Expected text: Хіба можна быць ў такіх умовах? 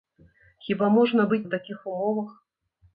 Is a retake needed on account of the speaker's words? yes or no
no